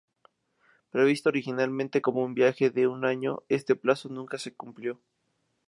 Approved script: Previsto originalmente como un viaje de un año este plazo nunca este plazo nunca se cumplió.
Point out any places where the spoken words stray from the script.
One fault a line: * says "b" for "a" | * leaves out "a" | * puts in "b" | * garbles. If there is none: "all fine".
* leaves out "este plazo nunca"